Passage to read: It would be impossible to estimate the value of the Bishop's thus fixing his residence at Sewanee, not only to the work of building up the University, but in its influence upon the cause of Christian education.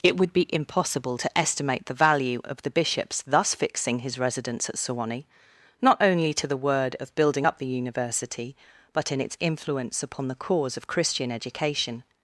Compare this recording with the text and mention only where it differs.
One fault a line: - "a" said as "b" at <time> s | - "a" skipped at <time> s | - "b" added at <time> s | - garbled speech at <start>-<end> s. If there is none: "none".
- "work" said as "word" at 6.6 s